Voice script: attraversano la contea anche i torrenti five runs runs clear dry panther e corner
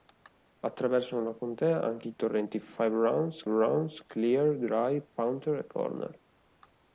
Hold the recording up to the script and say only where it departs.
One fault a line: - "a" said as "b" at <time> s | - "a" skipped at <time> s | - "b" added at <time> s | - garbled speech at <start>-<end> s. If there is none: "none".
none